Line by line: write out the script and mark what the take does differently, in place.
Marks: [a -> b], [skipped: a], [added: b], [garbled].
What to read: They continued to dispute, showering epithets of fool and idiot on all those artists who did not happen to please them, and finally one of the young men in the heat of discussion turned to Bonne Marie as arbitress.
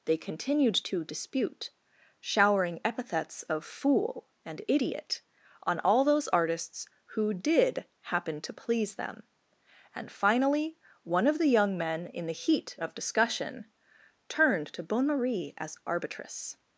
They continued to dispute, showering epithets of fool and idiot on all those artists who did [skipped: not] happen to please them, and finally one of the young men in the heat of discussion turned to Bonne Marie as arbitress.